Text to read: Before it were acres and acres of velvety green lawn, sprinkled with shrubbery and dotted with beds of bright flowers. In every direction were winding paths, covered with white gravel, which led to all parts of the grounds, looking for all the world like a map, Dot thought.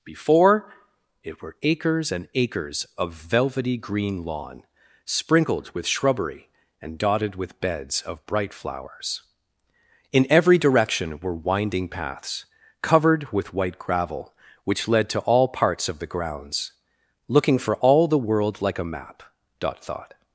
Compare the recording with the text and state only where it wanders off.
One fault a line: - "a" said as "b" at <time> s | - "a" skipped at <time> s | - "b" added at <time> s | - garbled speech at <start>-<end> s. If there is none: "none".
none